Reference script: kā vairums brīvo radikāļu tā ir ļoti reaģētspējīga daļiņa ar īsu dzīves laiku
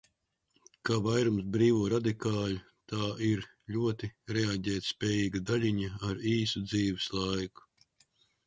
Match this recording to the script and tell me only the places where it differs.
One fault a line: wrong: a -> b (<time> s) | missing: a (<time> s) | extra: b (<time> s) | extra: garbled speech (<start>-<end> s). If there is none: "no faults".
no faults